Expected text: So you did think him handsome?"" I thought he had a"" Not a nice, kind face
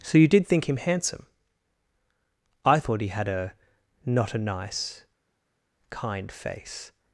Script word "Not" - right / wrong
right